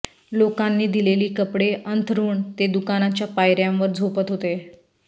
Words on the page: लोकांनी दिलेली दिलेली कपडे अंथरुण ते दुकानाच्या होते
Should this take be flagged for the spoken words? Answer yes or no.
yes